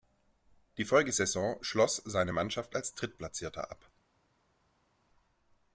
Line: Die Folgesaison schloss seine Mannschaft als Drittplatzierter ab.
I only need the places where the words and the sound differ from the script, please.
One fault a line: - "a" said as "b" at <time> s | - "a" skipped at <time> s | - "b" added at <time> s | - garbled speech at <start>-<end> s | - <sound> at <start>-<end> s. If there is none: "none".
none